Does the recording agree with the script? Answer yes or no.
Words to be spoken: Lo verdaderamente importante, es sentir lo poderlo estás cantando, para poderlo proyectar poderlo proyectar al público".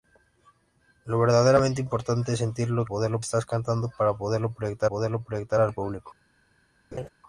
yes